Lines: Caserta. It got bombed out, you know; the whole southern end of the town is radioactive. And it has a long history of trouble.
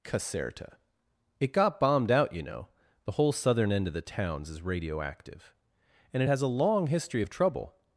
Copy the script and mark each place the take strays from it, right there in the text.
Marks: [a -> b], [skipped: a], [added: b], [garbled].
Caserta. It got bombed out, you know; the whole southern end of the [town -> towns] is radioactive. And it has a long history of trouble.